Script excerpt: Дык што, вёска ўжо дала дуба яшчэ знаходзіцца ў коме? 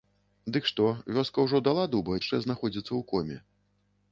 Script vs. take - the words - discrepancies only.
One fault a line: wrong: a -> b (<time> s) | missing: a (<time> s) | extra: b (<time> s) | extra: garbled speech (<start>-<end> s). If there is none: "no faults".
no faults